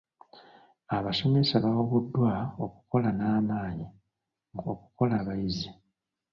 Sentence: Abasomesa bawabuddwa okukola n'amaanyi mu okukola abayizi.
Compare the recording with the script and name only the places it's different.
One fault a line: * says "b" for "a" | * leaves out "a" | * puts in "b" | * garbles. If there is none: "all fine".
all fine